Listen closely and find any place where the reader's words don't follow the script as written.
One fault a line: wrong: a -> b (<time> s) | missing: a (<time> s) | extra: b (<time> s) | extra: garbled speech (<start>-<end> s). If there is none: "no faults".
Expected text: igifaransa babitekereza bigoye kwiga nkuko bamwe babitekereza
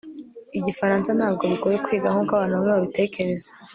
wrong: babitekereza -> ntabwo (1.2 s)
extra: abantu (2.3 s)